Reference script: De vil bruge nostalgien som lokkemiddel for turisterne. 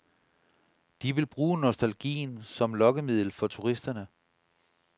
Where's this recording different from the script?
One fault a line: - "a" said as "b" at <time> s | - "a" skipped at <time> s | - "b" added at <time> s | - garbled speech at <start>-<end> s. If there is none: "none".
none